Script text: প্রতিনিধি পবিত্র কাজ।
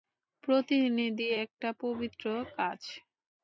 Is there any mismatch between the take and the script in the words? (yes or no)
yes